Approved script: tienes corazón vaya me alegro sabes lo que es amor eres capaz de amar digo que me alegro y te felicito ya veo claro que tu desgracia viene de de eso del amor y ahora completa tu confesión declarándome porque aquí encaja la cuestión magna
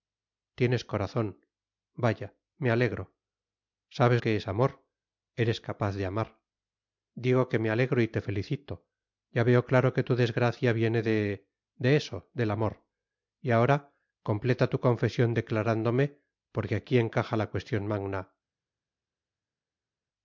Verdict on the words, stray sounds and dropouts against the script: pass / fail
fail